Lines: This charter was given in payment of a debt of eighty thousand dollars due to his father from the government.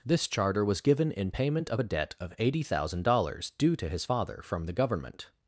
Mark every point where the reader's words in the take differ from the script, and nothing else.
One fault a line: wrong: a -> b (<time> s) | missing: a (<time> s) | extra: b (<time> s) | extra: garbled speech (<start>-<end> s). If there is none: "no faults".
no faults